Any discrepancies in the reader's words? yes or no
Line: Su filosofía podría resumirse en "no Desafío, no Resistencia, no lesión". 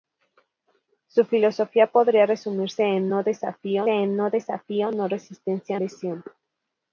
yes